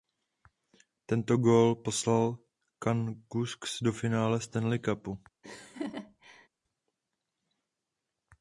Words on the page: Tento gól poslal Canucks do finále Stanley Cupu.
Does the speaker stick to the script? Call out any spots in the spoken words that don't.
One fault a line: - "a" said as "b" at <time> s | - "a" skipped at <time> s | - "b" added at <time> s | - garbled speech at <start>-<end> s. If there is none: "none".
none